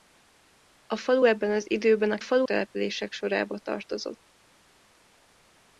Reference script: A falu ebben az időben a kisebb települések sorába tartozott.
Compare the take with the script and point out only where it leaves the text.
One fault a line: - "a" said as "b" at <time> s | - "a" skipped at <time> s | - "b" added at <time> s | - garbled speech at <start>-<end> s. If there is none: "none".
- "kisebb" said as "falu" at 2.2 s